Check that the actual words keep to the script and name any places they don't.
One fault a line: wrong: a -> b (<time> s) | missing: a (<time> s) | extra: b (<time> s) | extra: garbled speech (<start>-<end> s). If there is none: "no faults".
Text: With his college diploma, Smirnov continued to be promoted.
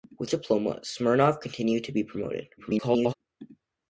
missing: his college (0.3 s)
extra: garbled speech (2.6-3.1 s)